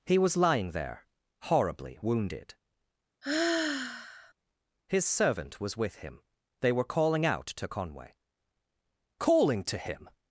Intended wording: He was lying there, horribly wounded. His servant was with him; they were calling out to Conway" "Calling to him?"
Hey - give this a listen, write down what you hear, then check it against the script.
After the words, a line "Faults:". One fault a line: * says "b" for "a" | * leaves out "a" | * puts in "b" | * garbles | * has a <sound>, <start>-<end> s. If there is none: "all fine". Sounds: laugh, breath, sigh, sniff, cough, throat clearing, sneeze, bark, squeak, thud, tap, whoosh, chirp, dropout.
He was lying there, horribly wounded. His servant was with him; they were calling out to Conway" "Calling to him?"
Faults:
* has a sigh, 3.2-4.3 s